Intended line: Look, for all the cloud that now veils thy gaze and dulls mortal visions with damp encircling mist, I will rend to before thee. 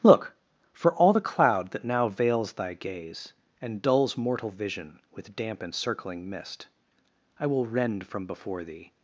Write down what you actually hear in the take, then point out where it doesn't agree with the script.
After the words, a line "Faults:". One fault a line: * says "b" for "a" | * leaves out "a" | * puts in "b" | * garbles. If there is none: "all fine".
Look, for all the cloud that now veils thy gaze and dulls mortal vision with damp encircling mist, I will rend from before thee.
Faults:
* says "vision" for "visions"
* says "from" for "to"